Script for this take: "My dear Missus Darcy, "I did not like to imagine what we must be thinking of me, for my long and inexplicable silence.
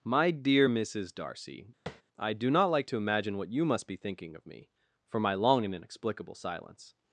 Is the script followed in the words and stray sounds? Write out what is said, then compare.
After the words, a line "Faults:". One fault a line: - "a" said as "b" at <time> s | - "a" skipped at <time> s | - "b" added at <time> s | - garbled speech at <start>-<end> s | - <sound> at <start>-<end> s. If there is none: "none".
"My dear Missus Darcy, "I do not like to imagine what you must be thinking of me, for my long and inexplicable silence.
Faults:
- tap at 1.9-2.0 s
- "did" said as "do" at 2.3 s
- "we" said as "you" at 3.5 s